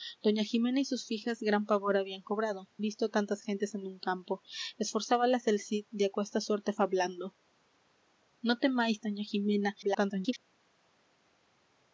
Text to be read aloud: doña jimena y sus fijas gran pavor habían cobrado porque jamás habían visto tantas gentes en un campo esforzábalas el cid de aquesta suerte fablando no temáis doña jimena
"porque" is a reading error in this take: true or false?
true